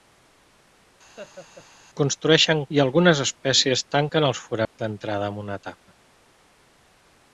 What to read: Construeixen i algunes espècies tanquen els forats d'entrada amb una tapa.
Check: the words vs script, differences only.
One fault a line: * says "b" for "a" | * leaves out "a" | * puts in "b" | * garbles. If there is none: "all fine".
all fine